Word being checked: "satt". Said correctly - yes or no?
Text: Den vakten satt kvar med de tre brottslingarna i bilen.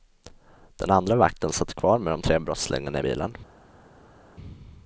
yes